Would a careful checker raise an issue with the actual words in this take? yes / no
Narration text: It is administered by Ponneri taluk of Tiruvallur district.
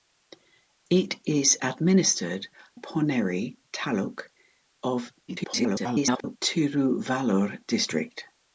yes